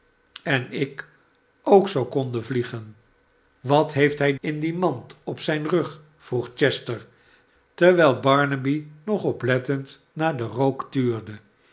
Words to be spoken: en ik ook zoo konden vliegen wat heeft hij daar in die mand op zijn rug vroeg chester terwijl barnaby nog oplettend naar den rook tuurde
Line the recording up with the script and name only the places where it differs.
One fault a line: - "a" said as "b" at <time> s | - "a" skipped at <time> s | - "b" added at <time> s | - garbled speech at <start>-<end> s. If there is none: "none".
- "daar" skipped at 4.3 s